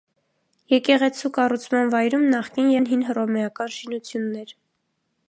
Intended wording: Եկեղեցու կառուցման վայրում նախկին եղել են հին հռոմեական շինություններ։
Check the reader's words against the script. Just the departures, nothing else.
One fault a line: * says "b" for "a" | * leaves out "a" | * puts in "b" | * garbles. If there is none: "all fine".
* leaves out "եղել"